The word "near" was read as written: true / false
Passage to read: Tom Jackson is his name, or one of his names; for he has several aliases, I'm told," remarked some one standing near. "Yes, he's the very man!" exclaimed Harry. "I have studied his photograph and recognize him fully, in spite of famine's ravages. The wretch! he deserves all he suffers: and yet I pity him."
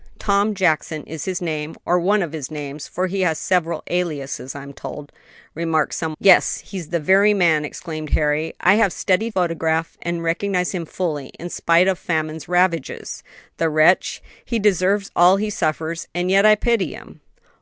false